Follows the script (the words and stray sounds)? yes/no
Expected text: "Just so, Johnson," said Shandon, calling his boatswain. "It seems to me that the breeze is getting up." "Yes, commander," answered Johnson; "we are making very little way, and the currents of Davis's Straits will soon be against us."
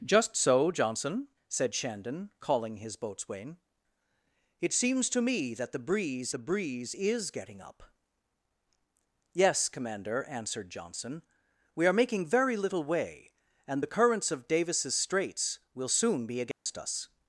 no